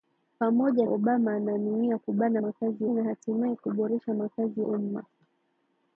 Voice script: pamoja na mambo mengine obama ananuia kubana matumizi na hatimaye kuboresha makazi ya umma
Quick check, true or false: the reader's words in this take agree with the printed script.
false